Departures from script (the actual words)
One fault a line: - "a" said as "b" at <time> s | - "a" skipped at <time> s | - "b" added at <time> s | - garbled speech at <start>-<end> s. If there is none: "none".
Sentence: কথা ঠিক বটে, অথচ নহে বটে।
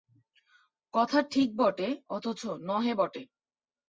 none